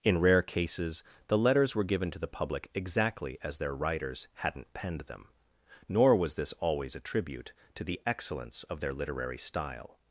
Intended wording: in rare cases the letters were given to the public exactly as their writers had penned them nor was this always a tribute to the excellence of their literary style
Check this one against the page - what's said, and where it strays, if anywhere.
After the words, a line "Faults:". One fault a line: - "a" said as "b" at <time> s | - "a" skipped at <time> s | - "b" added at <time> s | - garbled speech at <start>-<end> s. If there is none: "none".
in rare cases the letters were given to the public exactly as their writers hadn't penned them nor was this always a tribute to the excellence of their literary style
Faults:
- "had" said as "hadn't" at 4.3 s